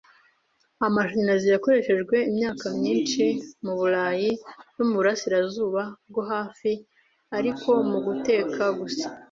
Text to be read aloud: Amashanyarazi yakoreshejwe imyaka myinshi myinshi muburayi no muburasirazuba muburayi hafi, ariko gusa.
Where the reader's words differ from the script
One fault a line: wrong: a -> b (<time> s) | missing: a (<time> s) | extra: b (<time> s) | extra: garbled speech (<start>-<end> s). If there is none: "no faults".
missing: myinshi (3.2 s)
wrong: muburayi -> bwo (6.1 s)
extra: muguteka (7.9 s)